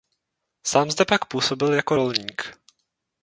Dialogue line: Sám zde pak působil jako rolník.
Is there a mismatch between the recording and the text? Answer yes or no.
no